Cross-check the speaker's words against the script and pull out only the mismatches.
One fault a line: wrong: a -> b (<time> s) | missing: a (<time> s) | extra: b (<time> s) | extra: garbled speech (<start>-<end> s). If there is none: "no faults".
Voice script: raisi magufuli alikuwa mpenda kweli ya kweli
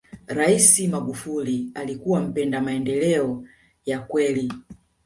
wrong: kweli -> maendeleo (2.6 s)